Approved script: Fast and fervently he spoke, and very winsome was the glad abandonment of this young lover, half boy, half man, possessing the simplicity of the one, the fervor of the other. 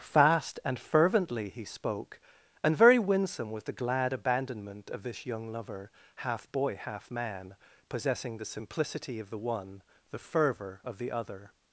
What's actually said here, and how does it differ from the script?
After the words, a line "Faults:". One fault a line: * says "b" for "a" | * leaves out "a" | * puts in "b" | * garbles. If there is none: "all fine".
Fast and fervently he spoke, and very winsome was the glad abandonment of this young lover, half boy, half man, possessing the simplicity of the one, the fervor of the other.
Faults:
all fine